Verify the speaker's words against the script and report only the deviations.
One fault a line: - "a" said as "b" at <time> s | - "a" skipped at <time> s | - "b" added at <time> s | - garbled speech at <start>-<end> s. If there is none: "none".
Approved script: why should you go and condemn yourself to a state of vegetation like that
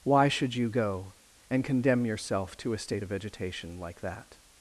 none